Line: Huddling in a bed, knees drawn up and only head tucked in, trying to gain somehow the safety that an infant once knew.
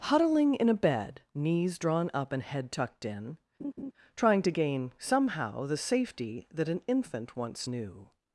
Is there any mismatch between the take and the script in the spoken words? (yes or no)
yes